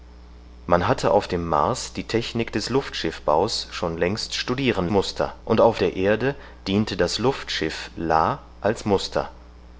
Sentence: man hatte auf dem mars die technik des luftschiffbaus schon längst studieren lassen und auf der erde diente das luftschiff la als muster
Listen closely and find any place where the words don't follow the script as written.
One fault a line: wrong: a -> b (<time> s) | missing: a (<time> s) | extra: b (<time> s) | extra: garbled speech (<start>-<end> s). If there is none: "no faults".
wrong: lassen -> muster (4.9 s)